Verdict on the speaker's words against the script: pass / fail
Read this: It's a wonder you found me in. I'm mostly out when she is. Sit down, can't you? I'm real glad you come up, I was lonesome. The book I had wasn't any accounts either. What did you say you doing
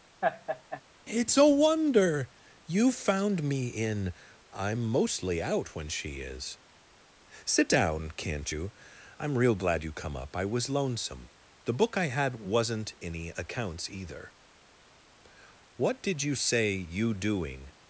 pass